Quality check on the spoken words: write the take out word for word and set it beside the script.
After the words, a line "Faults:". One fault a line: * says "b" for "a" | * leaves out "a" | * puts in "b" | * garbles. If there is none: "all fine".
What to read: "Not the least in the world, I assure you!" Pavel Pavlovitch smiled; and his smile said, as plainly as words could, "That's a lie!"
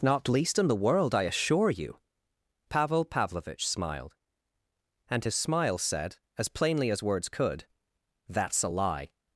"Not least in the world, I assure you!" Pavel Pavlovitch smiled; and his smile said, as plainly as words could, "That's a lie!"
Faults:
* leaves out "the"